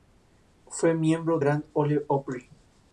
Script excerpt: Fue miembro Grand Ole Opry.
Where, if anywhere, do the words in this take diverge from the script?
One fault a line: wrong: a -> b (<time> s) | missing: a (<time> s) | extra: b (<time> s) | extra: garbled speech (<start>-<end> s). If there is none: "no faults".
no faults